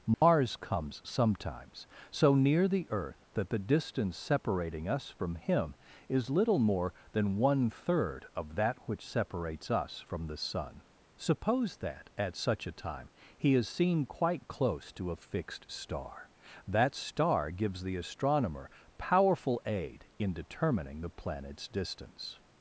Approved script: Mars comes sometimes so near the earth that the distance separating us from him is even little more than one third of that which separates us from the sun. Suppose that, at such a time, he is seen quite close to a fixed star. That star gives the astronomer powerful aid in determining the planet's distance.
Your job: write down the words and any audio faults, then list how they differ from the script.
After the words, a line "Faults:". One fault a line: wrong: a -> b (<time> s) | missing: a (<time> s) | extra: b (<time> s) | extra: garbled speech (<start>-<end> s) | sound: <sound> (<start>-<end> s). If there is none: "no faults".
Mars comes sometimes so near the earth that the distance separating us from him is little more than one third of that which separates us from the sun. Suppose that, at such a time, he is seen quite close to a fixed star. That star gives the astronomer powerful aid in determining the planet's distance.
Faults:
sound: dropout (0.1-0.2 s)
missing: even (6.3 s)